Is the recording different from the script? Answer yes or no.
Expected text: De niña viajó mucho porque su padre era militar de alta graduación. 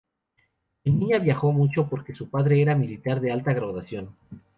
no